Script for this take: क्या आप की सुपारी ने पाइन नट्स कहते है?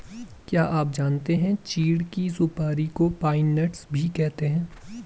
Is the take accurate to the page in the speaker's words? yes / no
no